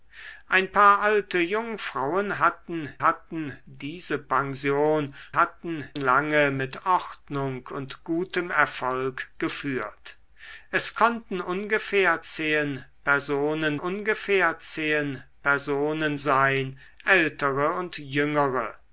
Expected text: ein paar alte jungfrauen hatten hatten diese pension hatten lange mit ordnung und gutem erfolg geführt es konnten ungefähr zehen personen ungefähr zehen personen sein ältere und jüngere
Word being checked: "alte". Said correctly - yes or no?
yes